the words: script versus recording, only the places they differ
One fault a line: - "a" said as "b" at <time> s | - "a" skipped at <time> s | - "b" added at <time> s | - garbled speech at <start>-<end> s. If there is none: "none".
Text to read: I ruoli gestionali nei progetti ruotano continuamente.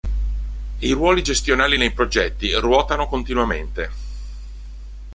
none